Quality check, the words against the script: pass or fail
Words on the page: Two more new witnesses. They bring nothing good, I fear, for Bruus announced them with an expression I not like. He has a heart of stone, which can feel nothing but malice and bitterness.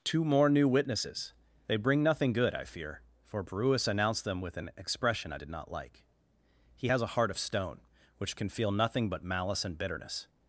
fail